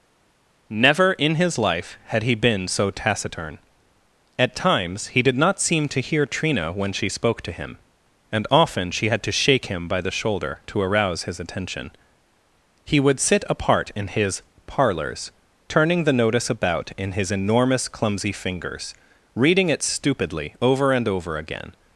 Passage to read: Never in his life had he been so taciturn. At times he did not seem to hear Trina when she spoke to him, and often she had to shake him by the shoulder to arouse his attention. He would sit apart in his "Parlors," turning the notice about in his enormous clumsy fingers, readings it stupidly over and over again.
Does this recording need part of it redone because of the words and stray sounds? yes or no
yes